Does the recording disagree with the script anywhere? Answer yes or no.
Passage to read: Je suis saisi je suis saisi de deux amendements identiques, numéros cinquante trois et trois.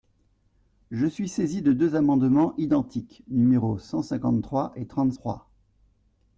yes